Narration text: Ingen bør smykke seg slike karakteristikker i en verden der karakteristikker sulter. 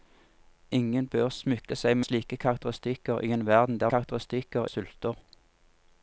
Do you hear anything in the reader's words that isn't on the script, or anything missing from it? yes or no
no